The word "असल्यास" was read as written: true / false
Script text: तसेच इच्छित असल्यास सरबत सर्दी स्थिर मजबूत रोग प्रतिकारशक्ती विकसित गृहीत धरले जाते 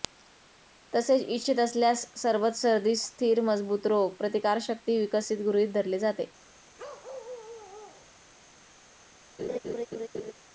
true